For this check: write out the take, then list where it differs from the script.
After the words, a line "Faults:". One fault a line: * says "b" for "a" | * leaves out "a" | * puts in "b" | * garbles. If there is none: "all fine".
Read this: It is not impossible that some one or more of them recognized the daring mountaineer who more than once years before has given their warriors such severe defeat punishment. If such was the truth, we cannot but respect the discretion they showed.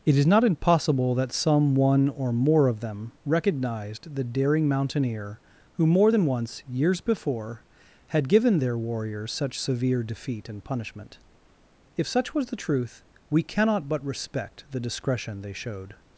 It is not impossible that some one or more of them recognized the daring mountaineer who more than once years before had given their warriors such severe defeat and punishment. If such was the truth, we cannot but respect the discretion they showed.
Faults:
* says "had" for "has"
* puts in "and"